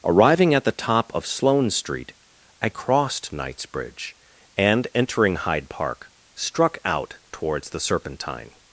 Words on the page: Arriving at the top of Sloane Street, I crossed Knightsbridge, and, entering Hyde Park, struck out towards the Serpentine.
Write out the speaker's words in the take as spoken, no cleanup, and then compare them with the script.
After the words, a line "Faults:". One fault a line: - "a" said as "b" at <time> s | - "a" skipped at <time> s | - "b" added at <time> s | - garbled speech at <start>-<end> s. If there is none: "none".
Arriving at the top of Sloane Street, I crossed Knightsbridge, and, entering Hyde Park, struck out towards the Serpentine.
Faults:
none